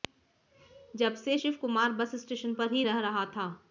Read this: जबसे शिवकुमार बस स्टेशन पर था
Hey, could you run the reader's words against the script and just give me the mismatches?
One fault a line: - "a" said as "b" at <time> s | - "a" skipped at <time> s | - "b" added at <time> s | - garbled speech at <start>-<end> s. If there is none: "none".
- "ही रह रहा" added at 2.7 s